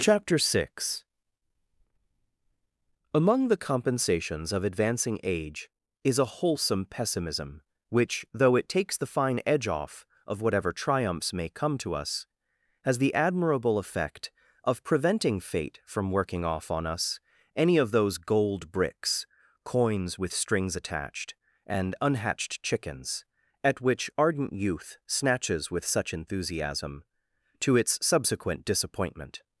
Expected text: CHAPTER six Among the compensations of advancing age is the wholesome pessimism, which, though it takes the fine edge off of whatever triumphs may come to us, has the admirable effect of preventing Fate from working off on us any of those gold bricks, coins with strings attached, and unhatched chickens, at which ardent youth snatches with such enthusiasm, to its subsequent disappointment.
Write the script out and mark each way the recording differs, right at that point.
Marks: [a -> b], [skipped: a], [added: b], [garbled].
CHAPTER six Among the compensations of advancing age is [the -> a] wholesome pessimism, which, though it takes the fine edge off of whatever triumphs may come to us, has the admirable effect of preventing Fate from working off on us any of those gold bricks, coins with strings attached, and unhatched chickens, at which ardent youth snatches with such enthusiasm, to its subsequent disappointment.